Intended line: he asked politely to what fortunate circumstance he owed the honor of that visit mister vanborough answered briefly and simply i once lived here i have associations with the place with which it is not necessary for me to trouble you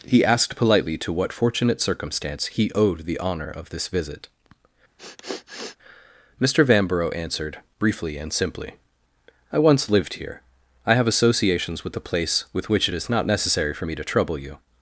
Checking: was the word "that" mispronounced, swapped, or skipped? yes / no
yes